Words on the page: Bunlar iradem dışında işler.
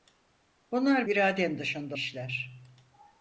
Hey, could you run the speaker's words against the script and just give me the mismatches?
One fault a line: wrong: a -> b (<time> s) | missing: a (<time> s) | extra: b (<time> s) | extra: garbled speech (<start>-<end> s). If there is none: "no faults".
no faults